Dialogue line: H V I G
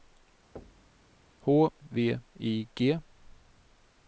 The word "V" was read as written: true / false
true